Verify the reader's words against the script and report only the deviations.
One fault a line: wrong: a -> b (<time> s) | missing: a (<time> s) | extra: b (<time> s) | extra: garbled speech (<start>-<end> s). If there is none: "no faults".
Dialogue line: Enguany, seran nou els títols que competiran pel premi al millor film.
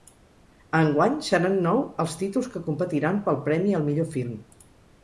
no faults